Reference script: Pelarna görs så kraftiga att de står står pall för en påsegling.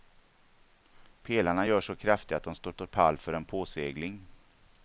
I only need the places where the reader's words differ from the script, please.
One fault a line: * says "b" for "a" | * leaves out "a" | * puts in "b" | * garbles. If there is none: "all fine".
all fine